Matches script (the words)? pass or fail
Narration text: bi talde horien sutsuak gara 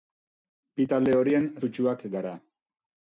pass